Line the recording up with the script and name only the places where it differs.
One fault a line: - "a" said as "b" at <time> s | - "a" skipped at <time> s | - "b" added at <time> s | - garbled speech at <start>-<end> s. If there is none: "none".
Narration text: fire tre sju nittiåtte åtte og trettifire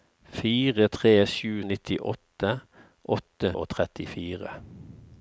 none